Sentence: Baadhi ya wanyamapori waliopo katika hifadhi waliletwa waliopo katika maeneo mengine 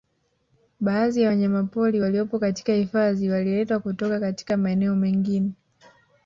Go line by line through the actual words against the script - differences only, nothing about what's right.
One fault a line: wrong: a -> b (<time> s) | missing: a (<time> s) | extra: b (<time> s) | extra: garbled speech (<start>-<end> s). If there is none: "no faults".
wrong: waliopo -> kutoka (3.8 s)